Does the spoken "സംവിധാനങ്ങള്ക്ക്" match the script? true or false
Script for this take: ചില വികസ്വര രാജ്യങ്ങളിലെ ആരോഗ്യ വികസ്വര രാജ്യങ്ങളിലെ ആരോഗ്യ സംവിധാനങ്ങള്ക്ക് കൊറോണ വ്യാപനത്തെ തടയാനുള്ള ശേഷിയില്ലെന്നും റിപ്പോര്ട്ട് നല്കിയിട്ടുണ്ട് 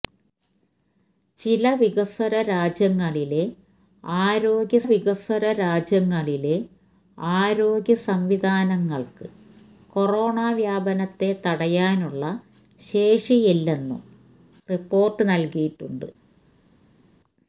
true